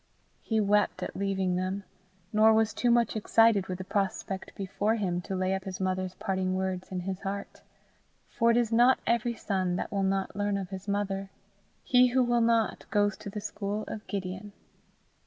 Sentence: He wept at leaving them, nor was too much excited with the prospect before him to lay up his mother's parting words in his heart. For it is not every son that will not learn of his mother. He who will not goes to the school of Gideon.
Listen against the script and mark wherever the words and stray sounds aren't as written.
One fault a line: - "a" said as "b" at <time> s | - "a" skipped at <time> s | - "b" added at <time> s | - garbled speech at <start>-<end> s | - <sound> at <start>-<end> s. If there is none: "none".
none